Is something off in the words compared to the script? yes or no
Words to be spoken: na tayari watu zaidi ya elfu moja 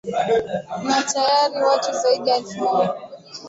no